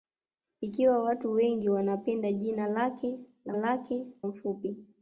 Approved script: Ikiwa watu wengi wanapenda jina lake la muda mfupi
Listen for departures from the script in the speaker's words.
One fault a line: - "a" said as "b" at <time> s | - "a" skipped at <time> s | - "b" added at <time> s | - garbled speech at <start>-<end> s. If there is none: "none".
- "muda" said as "lake" at 3.5 s